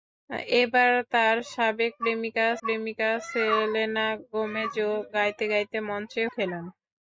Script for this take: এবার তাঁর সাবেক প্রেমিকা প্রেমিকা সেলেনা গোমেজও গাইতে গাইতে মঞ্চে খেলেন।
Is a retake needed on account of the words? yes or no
no